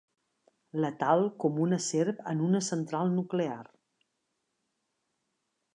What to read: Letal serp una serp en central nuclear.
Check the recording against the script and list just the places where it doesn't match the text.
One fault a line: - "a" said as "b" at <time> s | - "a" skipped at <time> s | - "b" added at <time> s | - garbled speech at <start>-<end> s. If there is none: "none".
- "serp" said as "com" at 1.4 s
- "una" added at 2.5 s